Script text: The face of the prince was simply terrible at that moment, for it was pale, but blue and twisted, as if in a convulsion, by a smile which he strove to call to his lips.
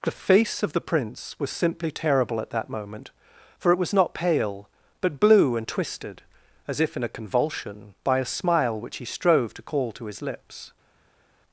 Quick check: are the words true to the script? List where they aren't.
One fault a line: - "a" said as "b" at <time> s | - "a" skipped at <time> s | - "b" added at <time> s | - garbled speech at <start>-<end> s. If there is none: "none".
- "not" added at 3.9 s